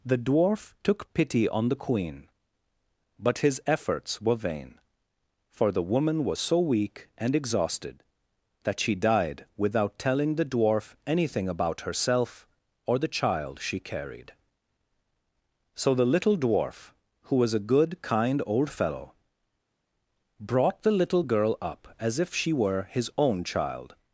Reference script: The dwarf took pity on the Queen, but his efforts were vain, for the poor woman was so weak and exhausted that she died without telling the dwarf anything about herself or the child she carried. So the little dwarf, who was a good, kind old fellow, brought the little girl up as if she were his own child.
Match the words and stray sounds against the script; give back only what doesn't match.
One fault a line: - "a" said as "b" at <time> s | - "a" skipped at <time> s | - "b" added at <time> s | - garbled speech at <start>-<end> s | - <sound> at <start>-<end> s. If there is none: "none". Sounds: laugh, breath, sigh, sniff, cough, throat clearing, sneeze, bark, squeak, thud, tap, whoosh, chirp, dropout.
- "poor" skipped at 5.8 s